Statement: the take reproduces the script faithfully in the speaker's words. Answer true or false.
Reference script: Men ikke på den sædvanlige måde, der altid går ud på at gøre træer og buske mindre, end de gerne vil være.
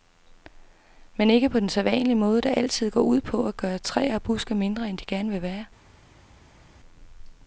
true